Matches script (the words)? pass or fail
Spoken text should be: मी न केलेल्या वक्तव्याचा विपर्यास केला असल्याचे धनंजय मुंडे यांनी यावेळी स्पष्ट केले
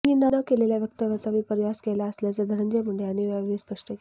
pass